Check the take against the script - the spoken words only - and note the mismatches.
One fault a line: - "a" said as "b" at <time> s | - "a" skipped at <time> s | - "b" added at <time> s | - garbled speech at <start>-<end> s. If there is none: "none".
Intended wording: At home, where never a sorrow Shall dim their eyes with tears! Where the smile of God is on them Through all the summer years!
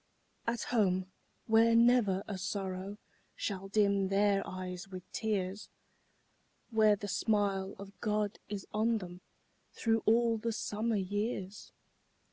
none